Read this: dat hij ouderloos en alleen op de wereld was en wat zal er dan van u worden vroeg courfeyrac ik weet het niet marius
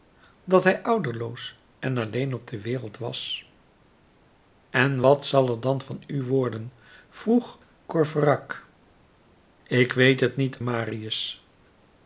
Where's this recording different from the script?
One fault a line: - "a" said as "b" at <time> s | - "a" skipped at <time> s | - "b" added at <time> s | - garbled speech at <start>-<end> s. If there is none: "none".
none